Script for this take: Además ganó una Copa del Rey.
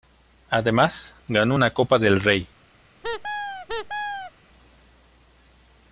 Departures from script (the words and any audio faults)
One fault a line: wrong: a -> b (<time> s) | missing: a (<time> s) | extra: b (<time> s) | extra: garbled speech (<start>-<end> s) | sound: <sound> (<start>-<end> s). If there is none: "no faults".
sound: squeak (3.0-4.3 s)